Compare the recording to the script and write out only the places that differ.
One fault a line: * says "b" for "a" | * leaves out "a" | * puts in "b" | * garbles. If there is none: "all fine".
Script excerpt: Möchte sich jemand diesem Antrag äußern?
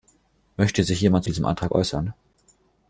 all fine